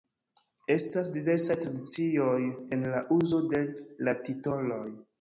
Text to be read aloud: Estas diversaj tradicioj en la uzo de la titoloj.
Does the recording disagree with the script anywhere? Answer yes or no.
no